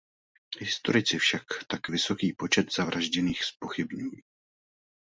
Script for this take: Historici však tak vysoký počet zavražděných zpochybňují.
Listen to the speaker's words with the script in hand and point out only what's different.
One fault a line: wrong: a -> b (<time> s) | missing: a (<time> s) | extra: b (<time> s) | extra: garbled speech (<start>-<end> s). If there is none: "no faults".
no faults